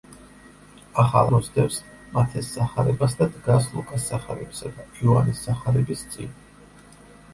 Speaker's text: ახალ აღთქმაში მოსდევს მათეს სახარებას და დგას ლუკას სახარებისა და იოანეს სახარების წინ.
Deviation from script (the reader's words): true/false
true